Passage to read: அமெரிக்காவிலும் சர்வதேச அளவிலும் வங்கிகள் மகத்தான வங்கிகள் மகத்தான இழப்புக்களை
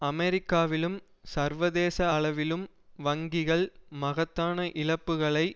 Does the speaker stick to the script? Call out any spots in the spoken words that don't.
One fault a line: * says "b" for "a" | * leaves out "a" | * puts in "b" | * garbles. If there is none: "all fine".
* leaves out "வங்கிகள் மகத்தான"